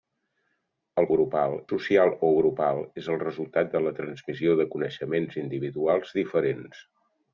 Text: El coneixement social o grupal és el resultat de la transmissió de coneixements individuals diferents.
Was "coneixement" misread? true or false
true